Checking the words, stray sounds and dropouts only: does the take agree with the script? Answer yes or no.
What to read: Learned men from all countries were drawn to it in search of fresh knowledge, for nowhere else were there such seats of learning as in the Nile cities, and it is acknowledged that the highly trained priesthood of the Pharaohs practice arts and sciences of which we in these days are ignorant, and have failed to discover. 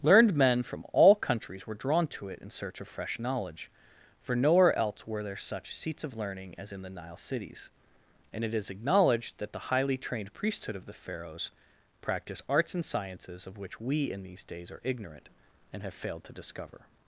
yes